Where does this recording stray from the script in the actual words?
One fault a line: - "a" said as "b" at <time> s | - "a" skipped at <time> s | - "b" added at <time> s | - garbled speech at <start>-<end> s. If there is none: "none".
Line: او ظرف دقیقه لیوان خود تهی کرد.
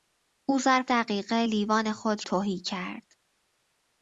none